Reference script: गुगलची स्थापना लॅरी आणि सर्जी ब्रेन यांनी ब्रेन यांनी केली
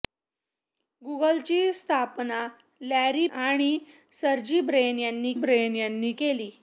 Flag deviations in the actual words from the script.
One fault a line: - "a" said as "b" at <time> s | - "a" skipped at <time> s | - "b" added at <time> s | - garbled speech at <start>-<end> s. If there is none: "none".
none